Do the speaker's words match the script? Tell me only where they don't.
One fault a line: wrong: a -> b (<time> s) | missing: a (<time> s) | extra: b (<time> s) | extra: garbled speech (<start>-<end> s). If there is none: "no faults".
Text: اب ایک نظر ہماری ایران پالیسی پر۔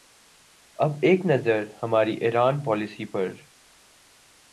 no faults